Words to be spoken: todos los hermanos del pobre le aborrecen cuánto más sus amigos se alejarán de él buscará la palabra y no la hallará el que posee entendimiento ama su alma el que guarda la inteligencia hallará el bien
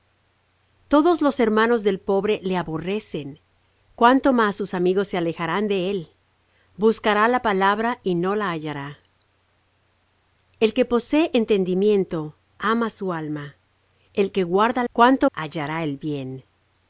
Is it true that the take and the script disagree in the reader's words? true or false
true